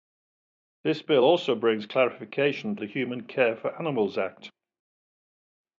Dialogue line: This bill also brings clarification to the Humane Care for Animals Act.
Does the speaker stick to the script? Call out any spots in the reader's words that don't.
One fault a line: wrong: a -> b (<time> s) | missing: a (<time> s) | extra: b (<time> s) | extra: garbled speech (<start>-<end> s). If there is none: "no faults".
missing: to (2.8 s)